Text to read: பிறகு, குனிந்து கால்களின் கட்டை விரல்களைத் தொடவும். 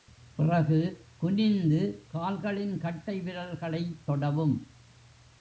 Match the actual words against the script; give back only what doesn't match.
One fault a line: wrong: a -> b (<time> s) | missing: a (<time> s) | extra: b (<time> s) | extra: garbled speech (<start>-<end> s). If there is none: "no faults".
no faults